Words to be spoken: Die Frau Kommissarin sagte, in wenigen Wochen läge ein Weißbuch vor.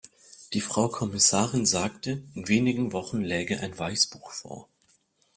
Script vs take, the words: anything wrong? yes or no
no